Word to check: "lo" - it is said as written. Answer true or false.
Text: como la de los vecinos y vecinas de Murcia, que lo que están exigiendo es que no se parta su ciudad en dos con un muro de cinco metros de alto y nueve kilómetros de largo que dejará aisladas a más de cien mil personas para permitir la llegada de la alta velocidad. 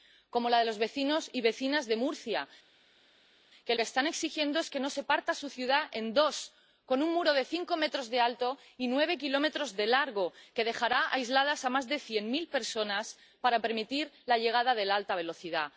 false